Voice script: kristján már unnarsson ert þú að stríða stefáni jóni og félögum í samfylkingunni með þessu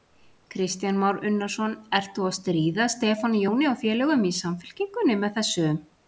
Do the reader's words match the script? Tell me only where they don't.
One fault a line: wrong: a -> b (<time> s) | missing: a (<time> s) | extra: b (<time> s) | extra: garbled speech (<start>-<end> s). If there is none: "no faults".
no faults